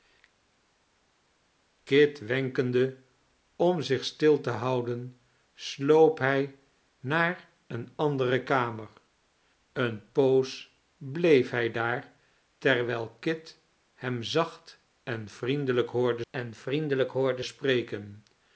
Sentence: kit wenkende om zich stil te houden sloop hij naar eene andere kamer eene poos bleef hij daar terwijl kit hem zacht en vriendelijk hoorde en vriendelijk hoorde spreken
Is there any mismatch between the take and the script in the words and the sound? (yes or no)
no